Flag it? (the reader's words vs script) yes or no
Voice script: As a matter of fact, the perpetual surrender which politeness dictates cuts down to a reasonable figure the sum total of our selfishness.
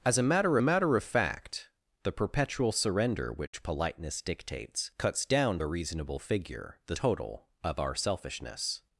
yes